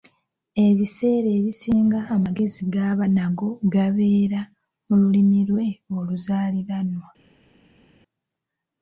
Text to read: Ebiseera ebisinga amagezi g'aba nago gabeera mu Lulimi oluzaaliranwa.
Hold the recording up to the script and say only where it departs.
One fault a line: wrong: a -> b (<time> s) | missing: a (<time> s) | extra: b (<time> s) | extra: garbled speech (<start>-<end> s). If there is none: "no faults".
extra: lwe (5.5 s)